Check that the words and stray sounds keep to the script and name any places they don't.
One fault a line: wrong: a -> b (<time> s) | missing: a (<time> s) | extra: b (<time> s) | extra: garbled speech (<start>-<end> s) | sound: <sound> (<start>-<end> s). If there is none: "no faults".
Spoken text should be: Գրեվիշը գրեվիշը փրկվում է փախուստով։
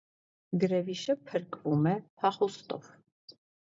missing: գրեվիշը (1.2 s)